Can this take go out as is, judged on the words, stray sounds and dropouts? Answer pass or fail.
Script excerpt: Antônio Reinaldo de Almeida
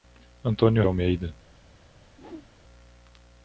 fail